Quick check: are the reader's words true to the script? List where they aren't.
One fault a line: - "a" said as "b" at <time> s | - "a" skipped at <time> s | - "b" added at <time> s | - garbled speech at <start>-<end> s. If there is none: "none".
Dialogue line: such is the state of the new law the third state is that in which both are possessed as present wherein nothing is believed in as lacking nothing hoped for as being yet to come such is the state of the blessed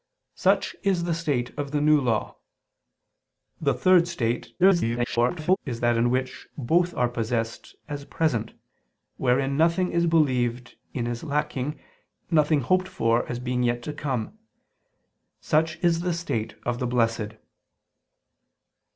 - garbled speech at 4.6-5.6 s